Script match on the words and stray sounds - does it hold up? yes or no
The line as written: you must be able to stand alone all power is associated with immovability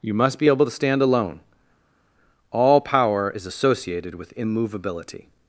yes